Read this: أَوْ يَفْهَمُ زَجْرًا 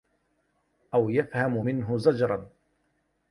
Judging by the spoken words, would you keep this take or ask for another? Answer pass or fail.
fail